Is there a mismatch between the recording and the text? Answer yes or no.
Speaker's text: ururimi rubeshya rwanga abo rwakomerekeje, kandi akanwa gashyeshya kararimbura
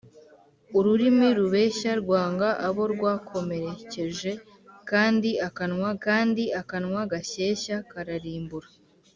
yes